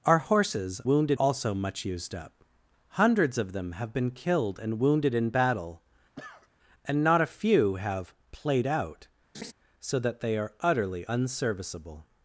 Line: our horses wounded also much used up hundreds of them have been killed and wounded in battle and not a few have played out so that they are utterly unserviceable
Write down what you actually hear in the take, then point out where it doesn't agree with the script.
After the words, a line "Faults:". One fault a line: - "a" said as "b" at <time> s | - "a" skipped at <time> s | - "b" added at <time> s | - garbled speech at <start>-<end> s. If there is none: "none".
our horses wounded also much used up hundreds of them have been killed and wounded in battle and not a few have played out so that they are utterly unserviceable
Faults:
none